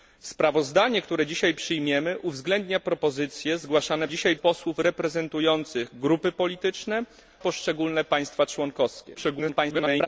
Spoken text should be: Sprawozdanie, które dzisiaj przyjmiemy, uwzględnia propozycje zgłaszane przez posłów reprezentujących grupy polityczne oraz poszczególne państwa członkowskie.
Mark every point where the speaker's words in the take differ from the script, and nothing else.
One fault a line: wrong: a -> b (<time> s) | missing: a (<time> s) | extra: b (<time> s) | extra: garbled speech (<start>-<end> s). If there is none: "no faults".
wrong: przez -> dzisiaj (4.1 s)
missing: oraz (7.0 s)
extra: garbled speech (9.1-10.1 s)